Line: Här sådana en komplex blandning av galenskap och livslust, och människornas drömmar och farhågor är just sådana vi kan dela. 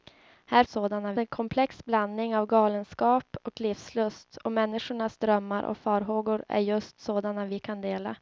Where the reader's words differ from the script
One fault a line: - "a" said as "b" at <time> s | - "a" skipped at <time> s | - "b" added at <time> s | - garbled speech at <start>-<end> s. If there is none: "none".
none